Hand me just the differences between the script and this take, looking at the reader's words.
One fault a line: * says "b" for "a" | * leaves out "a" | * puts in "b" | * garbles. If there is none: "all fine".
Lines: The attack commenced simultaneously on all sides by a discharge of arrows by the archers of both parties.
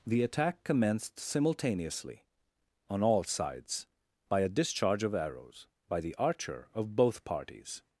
* says "archer" for "archers"